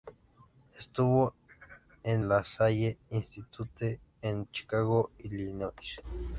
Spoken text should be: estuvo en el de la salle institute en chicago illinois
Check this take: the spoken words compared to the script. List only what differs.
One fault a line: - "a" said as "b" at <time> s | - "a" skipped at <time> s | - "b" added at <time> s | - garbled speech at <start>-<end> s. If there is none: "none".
- "el de" skipped at 2.2 s